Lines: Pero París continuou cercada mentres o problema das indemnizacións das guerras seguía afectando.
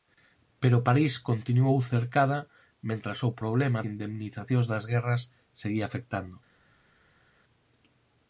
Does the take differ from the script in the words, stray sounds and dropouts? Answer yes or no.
yes